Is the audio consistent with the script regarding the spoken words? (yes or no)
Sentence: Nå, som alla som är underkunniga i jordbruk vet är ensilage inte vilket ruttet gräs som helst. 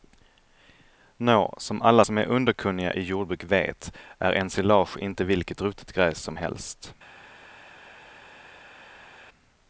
yes